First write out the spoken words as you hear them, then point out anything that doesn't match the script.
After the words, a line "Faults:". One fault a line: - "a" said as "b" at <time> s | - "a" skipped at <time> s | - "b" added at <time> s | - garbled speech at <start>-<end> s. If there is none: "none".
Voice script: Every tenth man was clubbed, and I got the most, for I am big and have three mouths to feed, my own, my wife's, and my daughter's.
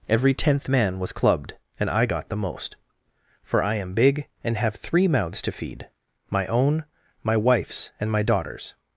Every tenth man was clubbed, and I got the most, for I am big and have three mouths to feed, my own, my wife's, and my daughter's.
Faults:
none